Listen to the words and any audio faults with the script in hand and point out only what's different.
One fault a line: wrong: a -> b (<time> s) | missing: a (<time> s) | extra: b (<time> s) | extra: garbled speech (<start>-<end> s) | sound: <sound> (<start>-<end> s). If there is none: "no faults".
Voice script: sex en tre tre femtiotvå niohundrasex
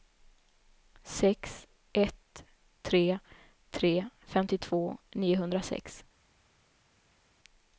wrong: en -> ett (1.9 s)